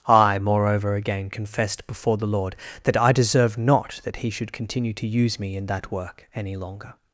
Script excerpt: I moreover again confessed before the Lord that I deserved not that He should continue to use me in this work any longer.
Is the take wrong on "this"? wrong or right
wrong